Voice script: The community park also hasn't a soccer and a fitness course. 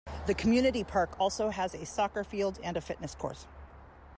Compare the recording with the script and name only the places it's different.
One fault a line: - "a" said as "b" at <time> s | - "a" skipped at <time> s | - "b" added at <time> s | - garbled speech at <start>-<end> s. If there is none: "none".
- "hasn't" said as "has" at 1.5 s
- "field" added at 2.2 s